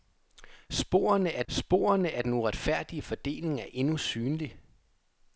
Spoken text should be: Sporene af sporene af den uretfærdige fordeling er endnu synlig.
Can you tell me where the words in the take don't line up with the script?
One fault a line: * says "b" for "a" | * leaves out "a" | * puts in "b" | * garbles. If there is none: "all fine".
all fine